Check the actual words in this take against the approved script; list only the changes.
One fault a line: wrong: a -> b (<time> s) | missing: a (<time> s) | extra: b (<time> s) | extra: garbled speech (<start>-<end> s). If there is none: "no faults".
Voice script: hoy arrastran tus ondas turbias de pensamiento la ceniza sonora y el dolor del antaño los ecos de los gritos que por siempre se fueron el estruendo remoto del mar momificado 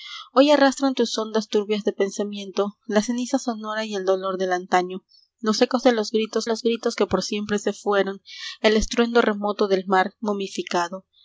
extra: los gritos (6.4 s)